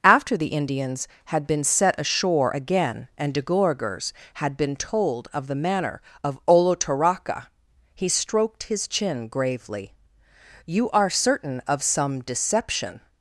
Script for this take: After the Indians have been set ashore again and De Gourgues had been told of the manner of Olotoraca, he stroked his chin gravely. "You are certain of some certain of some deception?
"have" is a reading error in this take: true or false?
true